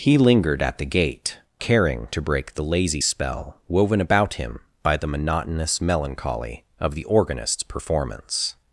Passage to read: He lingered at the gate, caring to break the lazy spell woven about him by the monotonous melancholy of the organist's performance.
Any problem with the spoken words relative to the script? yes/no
no